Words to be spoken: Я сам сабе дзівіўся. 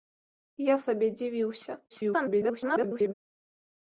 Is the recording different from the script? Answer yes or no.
yes